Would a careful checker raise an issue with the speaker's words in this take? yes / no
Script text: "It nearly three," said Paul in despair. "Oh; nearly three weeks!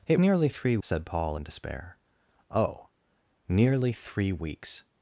no